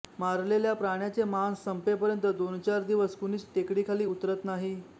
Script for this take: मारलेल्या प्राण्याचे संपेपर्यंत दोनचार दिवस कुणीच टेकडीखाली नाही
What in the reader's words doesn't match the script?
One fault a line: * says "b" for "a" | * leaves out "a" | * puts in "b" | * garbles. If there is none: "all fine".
* puts in "मांस"
* puts in "उतरत"